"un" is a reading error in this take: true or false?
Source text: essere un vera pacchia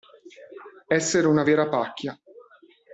true